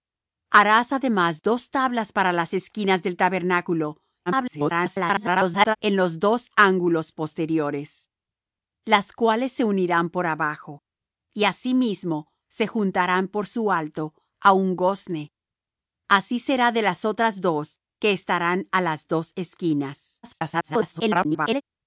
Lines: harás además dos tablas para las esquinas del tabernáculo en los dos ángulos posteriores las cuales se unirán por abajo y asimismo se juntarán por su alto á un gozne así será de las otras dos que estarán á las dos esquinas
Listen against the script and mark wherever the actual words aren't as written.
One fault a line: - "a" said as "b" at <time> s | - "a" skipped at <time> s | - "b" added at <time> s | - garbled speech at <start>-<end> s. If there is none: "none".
- garbled speech at 4.3-5.8 s
- garbled speech at 20.2-21.6 s